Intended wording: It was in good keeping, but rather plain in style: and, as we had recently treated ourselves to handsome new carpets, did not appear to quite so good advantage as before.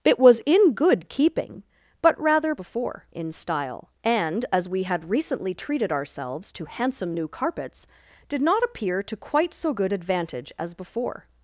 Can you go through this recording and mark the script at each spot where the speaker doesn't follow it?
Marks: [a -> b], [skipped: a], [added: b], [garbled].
It was in good keeping, but rather [plain -> before] in style: and, as we had recently treated ourselves to handsome new carpets, did not appear to quite so good advantage as before.